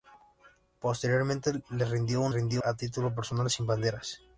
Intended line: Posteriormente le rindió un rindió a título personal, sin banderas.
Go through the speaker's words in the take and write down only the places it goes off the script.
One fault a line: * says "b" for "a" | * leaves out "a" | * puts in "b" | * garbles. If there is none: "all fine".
all fine